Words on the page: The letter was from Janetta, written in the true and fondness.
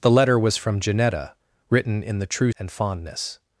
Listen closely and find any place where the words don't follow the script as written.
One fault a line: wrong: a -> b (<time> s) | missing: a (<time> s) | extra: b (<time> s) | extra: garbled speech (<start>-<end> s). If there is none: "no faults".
no faults